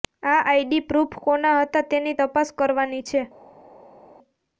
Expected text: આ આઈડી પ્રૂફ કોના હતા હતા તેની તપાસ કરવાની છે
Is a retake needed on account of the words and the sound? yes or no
yes